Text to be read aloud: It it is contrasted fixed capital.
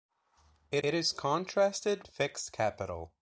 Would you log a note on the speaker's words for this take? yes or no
no